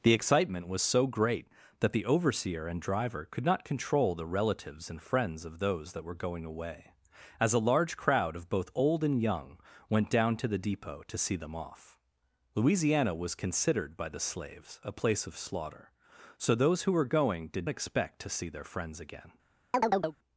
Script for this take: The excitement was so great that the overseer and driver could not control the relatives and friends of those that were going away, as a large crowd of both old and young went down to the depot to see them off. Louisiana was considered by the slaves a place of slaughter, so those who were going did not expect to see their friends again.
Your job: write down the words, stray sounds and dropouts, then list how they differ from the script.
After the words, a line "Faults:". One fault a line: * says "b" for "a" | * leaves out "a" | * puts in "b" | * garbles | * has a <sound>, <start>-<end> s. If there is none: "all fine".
The excitement was so great that the overseer and driver could not control the relatives and friends of those that were going away, as a large crowd of both old and young went down to the depot to see them off. Louisiana was considered by the slaves a place of slaughter, so those who were going did expect to see their friends again.
Faults:
* leaves out "not"
* has a chirp, 19.7-20.2 s